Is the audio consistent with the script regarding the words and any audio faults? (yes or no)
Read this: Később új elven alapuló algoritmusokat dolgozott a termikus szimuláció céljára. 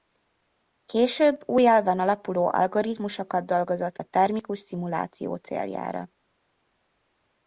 yes